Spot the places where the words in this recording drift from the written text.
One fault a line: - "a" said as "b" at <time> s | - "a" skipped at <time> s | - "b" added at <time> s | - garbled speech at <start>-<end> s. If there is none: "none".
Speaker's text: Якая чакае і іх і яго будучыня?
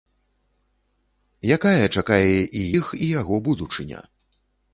none